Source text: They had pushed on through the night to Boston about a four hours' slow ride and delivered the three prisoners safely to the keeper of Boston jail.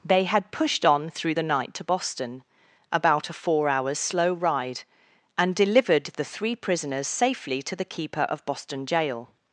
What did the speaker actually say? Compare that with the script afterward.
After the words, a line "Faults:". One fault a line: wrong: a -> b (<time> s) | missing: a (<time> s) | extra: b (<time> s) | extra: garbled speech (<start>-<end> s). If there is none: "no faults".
They had pushed on through the night to Boston about a four hours' slow ride and delivered the three prisoners safely to the keeper of Boston jail.
Faults:
no faults